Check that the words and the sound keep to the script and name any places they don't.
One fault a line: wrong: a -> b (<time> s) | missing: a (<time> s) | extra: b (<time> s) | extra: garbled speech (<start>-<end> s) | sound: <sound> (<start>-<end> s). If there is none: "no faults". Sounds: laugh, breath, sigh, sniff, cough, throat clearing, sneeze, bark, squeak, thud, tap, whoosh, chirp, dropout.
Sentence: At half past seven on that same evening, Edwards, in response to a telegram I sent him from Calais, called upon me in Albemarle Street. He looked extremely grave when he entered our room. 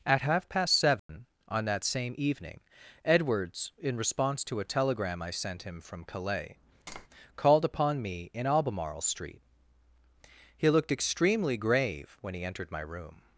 sound: dropout (1.0-1.1 s)
sound: tap (6.9-7.1 s)
wrong: our -> my (12.7 s)